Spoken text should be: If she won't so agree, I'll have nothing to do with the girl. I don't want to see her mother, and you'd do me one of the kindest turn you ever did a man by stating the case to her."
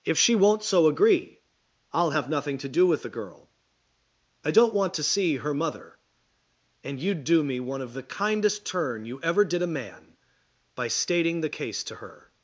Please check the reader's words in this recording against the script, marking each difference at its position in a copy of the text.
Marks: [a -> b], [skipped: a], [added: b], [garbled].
If she won't so agree, I'll have nothing to do with the girl. I don't want to see her mother, and you'd do me one of the kindest turn you ever did a man by stating the case to her."